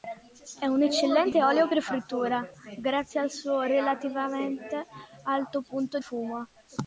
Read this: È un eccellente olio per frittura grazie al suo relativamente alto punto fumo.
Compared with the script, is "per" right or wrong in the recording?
right